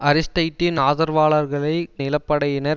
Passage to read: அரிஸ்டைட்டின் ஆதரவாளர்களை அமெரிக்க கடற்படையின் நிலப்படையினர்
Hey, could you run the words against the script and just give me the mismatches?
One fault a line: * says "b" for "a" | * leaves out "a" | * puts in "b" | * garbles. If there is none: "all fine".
* leaves out "அமெரிக்க கடற்படையின்"